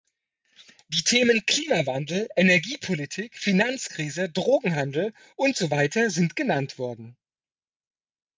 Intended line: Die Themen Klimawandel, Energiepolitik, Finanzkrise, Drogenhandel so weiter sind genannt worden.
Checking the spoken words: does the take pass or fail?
fail